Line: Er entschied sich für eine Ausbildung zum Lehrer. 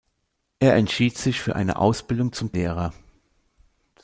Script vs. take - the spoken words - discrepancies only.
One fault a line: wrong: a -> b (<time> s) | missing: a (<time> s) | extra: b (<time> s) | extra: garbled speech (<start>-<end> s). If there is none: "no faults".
no faults